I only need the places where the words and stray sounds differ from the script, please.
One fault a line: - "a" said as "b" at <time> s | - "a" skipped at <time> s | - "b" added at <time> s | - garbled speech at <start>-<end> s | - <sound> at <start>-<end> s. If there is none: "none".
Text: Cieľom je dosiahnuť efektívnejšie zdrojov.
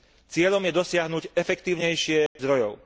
- dropout at 2.3-2.4 s